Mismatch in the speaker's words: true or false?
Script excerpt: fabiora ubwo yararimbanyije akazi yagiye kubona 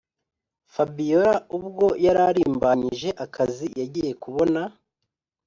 false